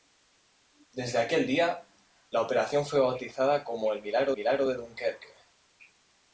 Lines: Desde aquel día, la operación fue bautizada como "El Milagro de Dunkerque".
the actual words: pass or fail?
fail